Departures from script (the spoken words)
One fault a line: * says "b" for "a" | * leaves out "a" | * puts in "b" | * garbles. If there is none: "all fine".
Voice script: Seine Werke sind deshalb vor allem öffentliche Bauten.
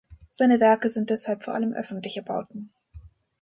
all fine